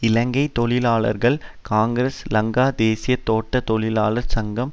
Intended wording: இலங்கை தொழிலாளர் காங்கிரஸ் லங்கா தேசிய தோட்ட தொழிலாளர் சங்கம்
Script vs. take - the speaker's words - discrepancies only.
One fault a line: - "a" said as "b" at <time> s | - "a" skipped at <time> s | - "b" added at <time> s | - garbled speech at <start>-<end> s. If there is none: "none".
none